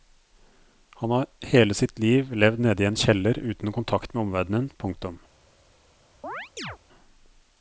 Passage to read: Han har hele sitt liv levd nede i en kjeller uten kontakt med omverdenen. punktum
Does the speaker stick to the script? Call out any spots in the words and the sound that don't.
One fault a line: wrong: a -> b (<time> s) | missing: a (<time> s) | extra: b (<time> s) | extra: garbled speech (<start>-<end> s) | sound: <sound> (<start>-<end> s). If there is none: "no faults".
sound: chirp (6.2-6.8 s)